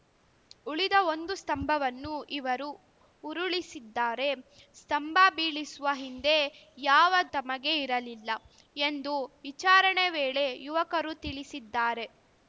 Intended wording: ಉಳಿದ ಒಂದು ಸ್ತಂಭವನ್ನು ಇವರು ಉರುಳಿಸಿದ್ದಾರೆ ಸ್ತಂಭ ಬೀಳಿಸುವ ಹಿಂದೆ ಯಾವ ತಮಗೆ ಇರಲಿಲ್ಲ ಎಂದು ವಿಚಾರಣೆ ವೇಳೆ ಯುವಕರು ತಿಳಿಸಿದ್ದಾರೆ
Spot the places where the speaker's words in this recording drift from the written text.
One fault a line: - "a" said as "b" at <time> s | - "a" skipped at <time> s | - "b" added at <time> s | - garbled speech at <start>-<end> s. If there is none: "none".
none